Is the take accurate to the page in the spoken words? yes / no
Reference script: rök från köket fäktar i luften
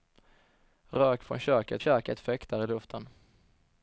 no